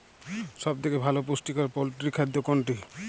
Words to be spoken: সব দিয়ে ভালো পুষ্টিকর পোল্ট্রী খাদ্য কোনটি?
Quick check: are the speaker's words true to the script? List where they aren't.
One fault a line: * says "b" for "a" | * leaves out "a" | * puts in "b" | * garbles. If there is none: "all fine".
* says "থেকে" for "দিয়ে"